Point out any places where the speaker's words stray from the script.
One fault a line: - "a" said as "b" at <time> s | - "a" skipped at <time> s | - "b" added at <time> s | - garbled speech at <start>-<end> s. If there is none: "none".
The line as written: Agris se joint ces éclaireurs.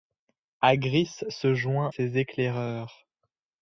none